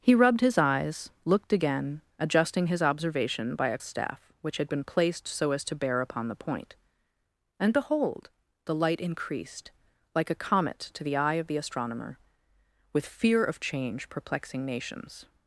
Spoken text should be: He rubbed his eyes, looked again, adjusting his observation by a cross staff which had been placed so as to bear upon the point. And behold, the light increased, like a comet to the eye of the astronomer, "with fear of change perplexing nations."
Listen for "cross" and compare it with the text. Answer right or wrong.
wrong